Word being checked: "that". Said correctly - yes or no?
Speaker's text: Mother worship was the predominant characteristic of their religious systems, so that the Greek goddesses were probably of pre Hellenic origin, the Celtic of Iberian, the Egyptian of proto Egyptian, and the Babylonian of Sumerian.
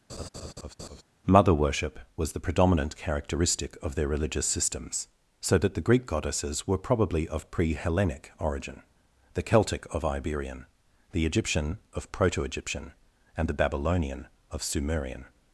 yes